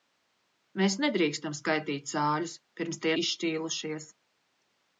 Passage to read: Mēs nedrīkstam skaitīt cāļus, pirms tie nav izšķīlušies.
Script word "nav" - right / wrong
wrong